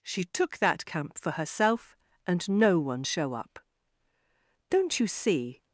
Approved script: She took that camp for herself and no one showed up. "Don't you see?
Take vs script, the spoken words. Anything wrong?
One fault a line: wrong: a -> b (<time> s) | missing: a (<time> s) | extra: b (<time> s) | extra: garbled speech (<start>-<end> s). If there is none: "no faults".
wrong: showed -> show (3.0 s)